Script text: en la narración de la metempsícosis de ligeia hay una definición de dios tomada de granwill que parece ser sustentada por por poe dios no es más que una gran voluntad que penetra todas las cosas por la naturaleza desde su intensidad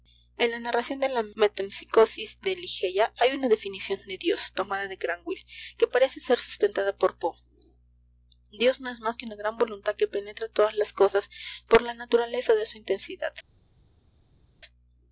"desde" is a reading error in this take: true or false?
true